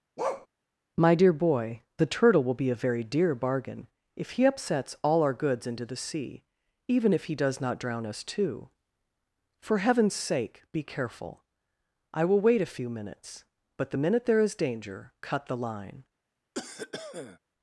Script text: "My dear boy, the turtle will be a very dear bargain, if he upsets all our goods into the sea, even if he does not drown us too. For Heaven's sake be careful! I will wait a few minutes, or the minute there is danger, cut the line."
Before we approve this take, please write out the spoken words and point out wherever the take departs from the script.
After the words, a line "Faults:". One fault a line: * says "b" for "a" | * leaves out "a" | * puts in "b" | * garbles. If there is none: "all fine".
"My dear boy, the turtle will be a very dear bargain, if he upsets all our goods into the sea, even if he does not drown us too. For Heaven's sake be careful! I will wait a few minutes, but the minute there is danger, cut the line."
Faults:
* says "but" for "or"